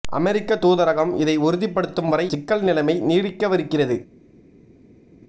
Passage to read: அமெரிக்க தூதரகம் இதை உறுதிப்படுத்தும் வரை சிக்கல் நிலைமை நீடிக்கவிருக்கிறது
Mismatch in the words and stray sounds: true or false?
false